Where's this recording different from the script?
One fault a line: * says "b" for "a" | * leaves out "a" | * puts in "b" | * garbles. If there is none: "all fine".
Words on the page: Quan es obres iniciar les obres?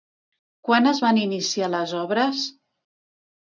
* says "van" for "obres"